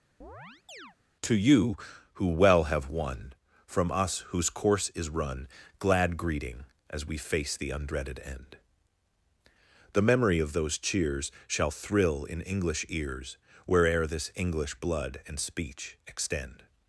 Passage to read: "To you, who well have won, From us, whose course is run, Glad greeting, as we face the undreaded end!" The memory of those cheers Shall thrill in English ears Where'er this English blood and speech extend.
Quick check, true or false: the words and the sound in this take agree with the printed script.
false